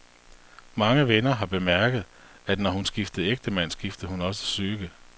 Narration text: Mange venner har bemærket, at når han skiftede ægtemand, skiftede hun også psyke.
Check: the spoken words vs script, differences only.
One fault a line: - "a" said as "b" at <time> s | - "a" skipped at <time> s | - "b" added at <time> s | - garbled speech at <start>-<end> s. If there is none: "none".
- "han" said as "hun" at 2.7 s